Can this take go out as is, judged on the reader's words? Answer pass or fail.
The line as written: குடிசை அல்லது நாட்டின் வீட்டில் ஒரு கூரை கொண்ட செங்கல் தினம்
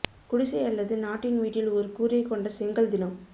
pass